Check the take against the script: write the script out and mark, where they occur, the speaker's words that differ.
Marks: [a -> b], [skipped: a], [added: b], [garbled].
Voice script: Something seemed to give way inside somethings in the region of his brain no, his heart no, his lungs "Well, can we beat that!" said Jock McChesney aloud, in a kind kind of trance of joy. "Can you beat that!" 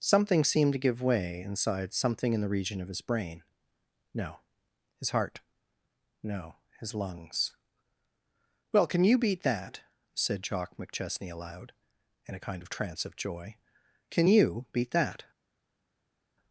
Something seemed to give way inside [somethings -> something] in the region of his brain no, his heart no, his lungs "Well, can [we -> you] beat that!" said Jock McChesney aloud, in a kind [skipped: kind] of trance of joy. "Can you beat that!"